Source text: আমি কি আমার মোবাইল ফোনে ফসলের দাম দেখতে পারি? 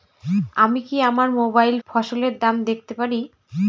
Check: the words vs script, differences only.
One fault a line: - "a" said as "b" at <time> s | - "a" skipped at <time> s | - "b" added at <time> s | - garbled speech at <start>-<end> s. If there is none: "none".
- "ফোনে" skipped at 1.8 s